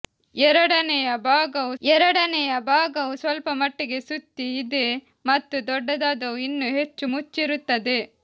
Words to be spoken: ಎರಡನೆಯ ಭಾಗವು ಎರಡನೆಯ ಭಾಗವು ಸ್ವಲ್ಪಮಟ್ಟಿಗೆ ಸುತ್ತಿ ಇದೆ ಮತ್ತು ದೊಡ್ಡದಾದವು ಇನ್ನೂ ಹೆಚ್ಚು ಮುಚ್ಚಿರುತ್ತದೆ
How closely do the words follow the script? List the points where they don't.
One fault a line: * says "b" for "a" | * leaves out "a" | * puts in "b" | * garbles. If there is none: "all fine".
all fine